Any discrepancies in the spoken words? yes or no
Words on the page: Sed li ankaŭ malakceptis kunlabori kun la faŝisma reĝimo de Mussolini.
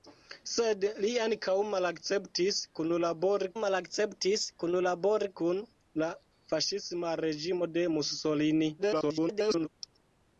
yes